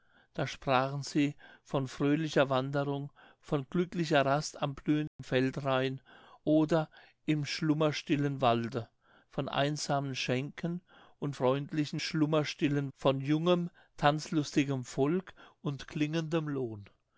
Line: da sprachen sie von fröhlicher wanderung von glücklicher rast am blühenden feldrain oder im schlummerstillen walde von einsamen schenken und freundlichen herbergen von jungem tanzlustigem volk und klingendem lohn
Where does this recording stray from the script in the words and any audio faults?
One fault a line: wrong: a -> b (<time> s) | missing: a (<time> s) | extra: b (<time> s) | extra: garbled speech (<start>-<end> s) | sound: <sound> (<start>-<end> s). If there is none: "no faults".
sound: dropout (5.1-5.2 s)
wrong: herbergen -> schlummerstillen (12.0 s)